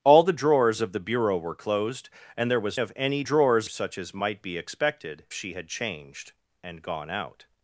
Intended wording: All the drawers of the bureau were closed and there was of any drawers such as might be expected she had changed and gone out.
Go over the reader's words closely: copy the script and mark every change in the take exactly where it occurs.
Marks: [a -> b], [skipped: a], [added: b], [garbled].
All the drawers of the bureau were closed and there was of any drawers such as might be expected she had changed and gone out.